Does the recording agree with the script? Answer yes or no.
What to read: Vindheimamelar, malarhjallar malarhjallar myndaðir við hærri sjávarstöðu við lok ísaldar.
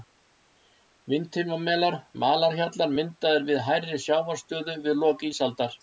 no